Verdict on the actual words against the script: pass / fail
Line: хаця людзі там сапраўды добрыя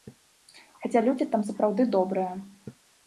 pass